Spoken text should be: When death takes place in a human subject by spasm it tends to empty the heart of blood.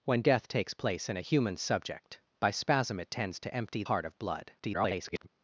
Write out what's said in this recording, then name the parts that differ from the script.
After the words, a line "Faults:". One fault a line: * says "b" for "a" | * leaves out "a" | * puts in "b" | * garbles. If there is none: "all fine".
When death takes place in a human subject by spasm it tends to empty heart of blood. [garbled]
Faults:
* leaves out "the"
* garbles